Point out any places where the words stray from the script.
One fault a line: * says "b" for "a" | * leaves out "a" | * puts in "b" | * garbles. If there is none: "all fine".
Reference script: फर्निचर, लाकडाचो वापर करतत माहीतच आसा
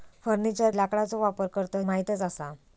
all fine